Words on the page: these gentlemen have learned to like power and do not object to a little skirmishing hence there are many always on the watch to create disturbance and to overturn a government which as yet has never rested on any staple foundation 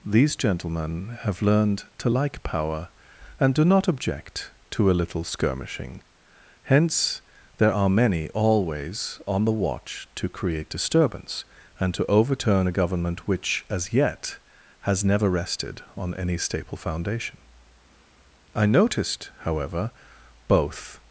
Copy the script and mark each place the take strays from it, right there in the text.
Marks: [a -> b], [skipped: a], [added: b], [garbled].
these gentlemen have learned to like power and do not object to a little skirmishing hence there are many always on the watch to create disturbance and to overturn a government which as yet has never rested on any staple foundation [added: i noticed however both]